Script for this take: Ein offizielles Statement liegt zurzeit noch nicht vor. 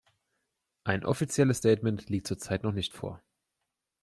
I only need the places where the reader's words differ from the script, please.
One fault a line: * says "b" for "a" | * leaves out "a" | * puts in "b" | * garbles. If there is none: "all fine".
all fine